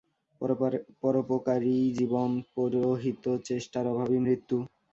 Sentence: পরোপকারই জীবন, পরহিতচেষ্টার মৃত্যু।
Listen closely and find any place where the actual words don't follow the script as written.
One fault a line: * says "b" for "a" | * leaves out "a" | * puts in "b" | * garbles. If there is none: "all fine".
* puts in "অভাবই"